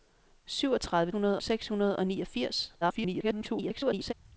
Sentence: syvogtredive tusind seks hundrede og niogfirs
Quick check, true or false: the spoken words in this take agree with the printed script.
false